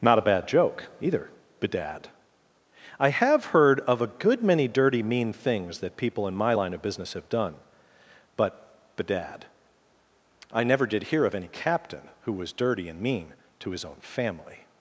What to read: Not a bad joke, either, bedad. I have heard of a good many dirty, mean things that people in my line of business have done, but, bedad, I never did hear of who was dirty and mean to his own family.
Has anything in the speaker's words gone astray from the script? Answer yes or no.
yes